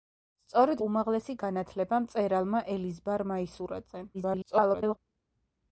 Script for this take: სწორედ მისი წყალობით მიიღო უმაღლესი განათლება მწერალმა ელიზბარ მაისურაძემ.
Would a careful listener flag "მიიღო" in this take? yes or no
yes